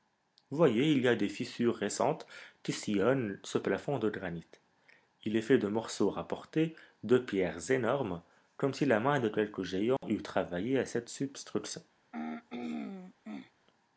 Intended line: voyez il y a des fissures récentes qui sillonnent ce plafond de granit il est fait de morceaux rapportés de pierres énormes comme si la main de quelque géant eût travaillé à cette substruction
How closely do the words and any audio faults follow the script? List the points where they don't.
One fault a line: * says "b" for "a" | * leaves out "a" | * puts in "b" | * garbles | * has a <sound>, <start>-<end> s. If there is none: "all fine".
* has a dropout, 10.0-10.0 s
* has a throat clearing, 12.1-13.5 s